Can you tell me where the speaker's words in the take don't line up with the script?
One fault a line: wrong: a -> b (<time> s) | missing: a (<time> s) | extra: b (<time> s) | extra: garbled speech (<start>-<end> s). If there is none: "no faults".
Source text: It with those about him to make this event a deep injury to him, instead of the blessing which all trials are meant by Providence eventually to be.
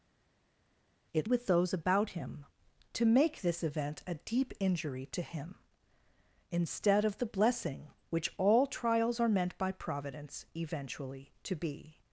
no faults